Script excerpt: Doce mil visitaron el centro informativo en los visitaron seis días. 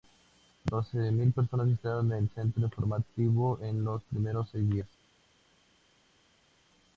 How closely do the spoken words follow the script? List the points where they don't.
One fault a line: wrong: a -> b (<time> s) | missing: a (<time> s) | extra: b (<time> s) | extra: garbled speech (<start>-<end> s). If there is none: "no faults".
extra: personas (1.3 s)
wrong: visitaron -> primeros (4.0 s)